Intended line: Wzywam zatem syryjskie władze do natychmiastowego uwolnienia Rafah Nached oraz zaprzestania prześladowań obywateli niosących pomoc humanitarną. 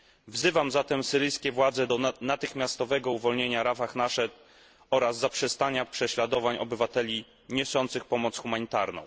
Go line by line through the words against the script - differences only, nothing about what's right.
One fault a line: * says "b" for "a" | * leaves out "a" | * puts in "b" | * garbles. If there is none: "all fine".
all fine